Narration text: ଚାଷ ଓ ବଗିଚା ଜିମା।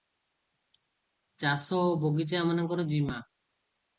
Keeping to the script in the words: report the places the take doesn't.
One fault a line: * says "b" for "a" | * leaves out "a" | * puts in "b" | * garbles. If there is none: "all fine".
* puts in "ଏମାନଙ୍କର"